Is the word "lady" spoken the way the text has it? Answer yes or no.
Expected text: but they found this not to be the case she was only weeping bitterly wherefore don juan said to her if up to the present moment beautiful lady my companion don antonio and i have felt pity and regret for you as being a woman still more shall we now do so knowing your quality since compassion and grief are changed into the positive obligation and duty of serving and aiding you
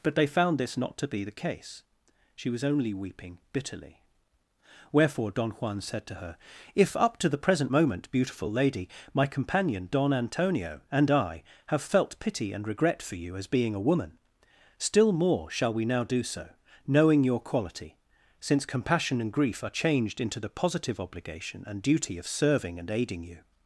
yes